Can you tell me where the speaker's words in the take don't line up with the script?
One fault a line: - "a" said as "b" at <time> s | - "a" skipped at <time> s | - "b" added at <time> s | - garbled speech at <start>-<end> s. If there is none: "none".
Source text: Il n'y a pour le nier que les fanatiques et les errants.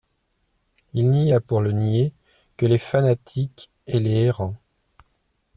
none